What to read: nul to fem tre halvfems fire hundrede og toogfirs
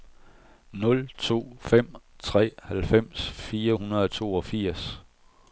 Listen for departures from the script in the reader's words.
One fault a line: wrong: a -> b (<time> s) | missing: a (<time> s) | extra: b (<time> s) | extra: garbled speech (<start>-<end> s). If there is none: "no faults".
no faults